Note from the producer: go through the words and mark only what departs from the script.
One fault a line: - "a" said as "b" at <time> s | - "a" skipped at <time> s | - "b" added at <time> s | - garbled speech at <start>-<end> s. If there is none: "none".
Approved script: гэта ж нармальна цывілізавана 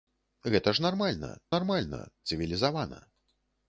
- "нармальна" added at 1.6 s